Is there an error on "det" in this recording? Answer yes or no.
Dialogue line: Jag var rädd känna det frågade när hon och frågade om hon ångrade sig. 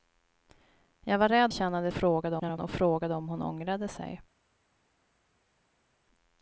no